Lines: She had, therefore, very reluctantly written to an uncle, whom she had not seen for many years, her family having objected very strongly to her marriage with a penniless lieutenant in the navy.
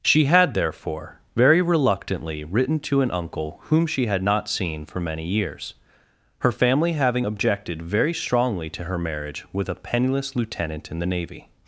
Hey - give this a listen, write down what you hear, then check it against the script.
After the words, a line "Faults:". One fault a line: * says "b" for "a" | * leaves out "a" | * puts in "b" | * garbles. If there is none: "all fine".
She had, therefore, very reluctantly written to an uncle, whom she had not seen for many years, her family having objected very strongly to her marriage with a penniless lieutenant in the navy.
Faults:
all fine